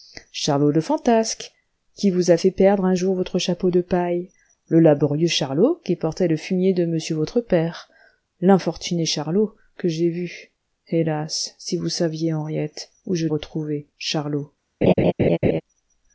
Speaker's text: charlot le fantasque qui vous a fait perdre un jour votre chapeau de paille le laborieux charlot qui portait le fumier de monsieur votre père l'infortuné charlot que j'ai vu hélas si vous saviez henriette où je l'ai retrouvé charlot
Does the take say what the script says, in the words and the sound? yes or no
no